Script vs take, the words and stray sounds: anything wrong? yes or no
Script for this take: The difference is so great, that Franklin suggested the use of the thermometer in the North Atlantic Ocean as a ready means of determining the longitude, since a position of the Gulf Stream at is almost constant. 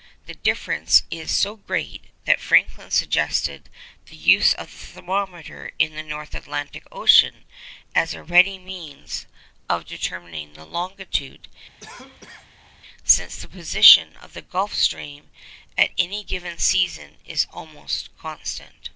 yes